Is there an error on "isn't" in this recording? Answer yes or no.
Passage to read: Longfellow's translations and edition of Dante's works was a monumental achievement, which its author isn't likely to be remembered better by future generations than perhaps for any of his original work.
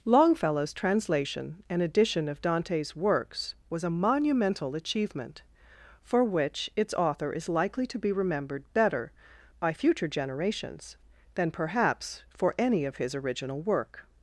yes